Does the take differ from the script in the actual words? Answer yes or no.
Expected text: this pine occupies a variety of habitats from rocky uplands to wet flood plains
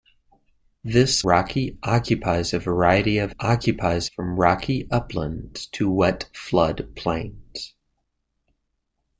yes